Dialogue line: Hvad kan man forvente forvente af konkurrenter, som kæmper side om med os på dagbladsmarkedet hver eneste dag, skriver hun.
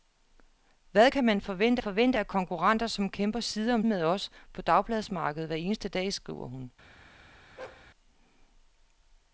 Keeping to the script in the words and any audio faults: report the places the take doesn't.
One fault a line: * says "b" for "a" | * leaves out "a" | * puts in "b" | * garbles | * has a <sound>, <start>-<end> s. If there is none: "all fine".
* has a bark, 7.6-7.9 s